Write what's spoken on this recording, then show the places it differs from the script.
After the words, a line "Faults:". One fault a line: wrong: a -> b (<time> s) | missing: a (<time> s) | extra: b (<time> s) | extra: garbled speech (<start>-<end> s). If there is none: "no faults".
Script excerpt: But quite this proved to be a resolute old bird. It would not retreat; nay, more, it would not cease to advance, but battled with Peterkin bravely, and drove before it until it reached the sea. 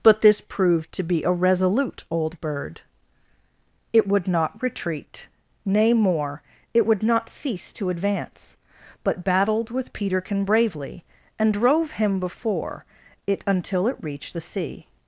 But this proved to be a resolute old bird. It would not retreat; nay, more, it would not cease to advance, but battled with Peterkin bravely, and drove him before it until it reached the sea.
Faults:
missing: quite (0.2 s)
extra: him (11.9 s)